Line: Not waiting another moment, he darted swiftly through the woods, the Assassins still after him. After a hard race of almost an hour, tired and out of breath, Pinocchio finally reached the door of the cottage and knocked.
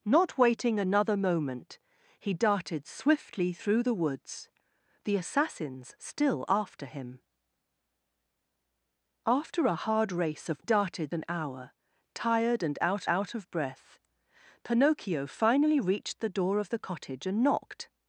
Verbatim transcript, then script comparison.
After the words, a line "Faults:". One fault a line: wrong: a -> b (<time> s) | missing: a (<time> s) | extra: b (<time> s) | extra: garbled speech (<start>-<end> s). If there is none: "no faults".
Not waiting another moment, he darted swiftly through the woods, the Assassins still after him. After a hard race of darted an hour, tired and out out of breath, Pinocchio finally reached the door of the cottage and knocked.
Faults:
wrong: almost -> darted (10.6 s)
extra: out (13.1 s)